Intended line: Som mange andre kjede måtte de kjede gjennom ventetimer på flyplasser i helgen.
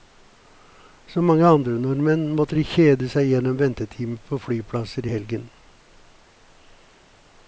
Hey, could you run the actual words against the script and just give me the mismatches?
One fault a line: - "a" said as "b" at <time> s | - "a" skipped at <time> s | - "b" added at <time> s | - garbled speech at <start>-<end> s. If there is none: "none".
- "kjede" said as "nordmenn" at 1.8 s
- "seg" added at 3.1 s